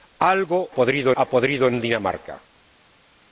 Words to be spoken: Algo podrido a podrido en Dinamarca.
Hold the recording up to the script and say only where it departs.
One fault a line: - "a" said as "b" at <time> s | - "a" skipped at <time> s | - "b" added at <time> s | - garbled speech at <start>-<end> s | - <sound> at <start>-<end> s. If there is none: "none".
none